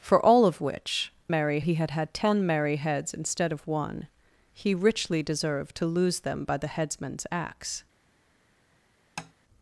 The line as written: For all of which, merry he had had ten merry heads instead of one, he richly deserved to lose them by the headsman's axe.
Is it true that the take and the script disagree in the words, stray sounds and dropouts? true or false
true